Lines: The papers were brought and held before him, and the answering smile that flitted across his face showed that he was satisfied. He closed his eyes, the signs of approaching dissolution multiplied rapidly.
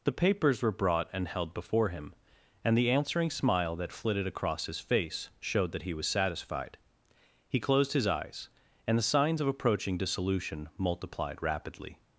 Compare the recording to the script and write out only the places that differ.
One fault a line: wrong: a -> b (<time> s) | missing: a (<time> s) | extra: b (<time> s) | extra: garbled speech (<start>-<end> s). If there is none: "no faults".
extra: and (8.9 s)